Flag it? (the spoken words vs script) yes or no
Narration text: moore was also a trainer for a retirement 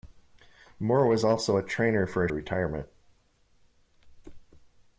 no